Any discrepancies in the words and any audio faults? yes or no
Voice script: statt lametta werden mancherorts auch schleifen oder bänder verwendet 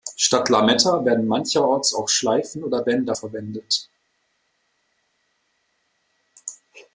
no